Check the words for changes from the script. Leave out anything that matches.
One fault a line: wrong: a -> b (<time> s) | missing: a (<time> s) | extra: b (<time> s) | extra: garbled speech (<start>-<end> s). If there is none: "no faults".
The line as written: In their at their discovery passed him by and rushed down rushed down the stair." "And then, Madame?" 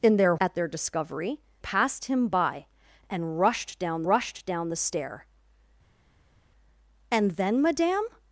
no faults